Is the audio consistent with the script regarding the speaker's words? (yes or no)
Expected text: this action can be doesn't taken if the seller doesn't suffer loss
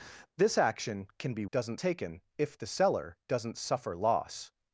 yes